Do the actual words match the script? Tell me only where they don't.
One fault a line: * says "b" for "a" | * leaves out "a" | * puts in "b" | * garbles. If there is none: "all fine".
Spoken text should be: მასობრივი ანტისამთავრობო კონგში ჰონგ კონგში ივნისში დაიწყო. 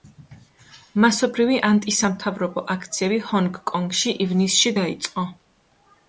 * says "აქციები" for "კონგში"